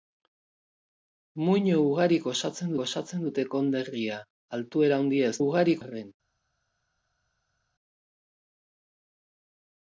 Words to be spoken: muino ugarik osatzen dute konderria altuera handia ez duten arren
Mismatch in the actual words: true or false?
true